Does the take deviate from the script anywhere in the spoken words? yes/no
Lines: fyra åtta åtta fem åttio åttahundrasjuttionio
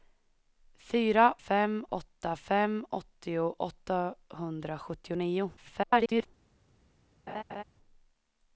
yes